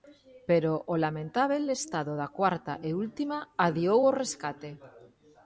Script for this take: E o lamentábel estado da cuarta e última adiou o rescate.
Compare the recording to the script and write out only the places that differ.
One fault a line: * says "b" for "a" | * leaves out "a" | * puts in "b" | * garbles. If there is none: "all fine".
* says "Pero" for "E"